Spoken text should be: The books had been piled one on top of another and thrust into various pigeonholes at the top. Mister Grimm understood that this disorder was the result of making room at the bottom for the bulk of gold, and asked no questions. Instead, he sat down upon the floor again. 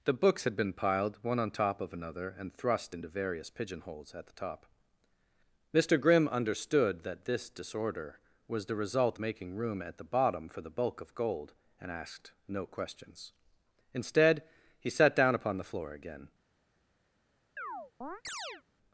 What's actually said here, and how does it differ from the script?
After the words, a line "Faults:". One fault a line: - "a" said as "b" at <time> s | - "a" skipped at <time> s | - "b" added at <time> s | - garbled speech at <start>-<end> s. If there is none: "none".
The books had been piled one on top of another and thrust into various pigeonholes at the top. Mister Grimm understood that this disorder was the result making room at the bottom for the bulk of gold, and asked no questions. Instead, he sat down upon the floor again.
Faults:
- "of" skipped at 9.2 s